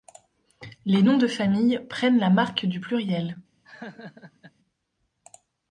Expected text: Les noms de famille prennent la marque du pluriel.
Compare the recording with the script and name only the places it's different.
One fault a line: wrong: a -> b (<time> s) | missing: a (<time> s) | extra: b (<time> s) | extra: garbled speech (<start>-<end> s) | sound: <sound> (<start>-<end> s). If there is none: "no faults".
sound: laugh (3.6-4.5 s)